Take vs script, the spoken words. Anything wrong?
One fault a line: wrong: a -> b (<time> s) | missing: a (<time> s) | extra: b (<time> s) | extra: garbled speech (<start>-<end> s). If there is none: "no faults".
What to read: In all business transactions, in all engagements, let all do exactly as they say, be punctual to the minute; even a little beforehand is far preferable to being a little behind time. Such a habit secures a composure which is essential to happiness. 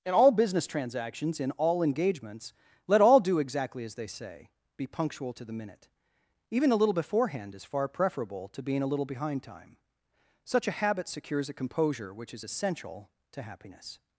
no faults